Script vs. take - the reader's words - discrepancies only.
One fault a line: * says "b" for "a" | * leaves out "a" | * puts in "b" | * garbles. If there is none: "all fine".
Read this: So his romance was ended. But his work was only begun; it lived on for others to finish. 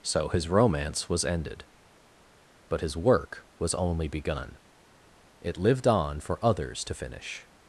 all fine